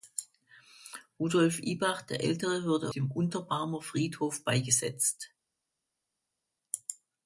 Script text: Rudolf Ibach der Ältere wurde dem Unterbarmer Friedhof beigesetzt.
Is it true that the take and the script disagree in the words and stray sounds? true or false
false